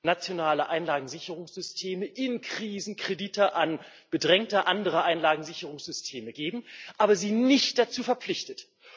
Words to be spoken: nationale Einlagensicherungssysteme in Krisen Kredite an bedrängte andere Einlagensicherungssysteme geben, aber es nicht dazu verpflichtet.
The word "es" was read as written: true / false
false